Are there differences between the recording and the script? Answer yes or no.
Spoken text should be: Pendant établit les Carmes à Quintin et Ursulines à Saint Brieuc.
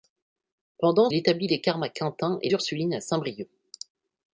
no